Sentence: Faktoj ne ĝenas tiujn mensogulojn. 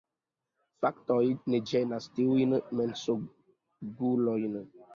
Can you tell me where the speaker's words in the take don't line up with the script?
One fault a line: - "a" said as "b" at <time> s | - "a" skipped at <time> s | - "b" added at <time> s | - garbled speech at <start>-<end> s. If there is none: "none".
none